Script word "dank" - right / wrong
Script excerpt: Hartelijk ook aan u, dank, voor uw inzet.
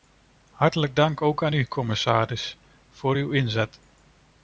wrong